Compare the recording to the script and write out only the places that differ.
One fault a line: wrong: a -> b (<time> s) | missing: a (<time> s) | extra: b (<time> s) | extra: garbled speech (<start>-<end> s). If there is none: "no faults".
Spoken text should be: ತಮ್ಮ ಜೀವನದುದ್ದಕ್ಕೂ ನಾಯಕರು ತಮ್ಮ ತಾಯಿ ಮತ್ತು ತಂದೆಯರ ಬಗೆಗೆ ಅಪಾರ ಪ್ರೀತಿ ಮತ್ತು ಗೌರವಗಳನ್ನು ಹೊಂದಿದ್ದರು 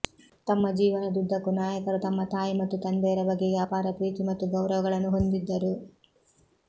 no faults